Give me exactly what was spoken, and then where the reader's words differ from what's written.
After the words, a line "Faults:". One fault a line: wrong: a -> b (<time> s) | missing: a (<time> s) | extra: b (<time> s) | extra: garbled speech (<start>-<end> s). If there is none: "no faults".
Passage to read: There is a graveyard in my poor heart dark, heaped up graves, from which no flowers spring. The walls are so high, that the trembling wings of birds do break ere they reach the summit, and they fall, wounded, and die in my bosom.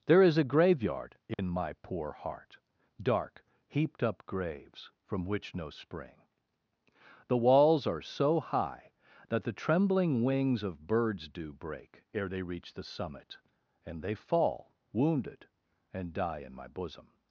There is a graveyard in my poor heart dark, heaped up graves, from which no spring. The walls are so high, that the trembling wings of birds do break ere they reach the summit, and they fall, wounded, and die in my bosom.
Faults:
missing: flowers (5.7 s)